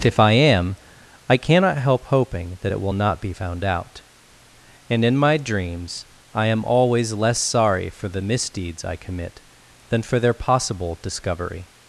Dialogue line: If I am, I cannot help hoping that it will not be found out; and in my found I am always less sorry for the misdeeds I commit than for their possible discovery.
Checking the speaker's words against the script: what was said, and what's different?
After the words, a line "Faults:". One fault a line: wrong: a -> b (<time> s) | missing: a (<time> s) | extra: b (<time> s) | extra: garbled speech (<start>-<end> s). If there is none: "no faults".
If I am, I cannot help hoping that it will not be found out; and in my dreams I am always less sorry for the misdeeds I commit than for their possible discovery.
Faults:
wrong: found -> dreams (5.4 s)